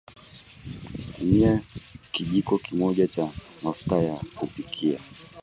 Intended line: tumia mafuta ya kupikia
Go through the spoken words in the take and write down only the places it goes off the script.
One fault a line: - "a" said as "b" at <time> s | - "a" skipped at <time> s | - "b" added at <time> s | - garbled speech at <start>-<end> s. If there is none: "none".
- "kijiko kimoja cha" added at 2.1 s